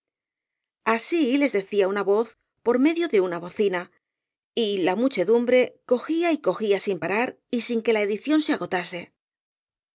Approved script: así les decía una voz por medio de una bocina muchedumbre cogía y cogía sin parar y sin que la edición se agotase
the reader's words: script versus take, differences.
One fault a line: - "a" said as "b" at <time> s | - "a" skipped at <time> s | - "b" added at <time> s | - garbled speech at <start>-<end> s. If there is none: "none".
- "y la" added at 4.5 s